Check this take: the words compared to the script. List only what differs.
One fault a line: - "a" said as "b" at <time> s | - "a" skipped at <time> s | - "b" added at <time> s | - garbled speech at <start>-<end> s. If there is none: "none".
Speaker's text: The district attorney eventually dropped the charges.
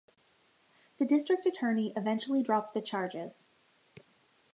none